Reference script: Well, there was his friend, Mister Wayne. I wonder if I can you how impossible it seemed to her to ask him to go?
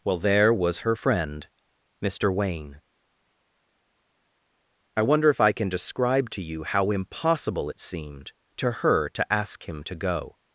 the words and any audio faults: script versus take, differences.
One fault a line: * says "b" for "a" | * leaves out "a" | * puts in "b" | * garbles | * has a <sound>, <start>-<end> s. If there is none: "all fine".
* says "her" for "his"
* puts in "describe to"